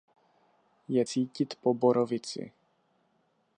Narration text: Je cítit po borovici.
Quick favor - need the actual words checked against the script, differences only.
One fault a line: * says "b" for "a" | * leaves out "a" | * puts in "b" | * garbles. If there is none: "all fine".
all fine